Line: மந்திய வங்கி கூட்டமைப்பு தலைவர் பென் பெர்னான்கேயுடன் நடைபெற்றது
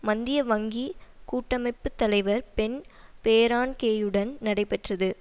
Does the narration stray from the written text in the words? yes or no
no